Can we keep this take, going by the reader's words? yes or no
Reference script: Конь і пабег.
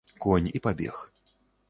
yes